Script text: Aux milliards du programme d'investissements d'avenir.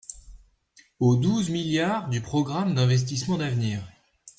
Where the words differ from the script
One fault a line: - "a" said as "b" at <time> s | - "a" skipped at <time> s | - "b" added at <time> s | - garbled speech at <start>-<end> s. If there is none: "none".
- "douze" added at 1.1 s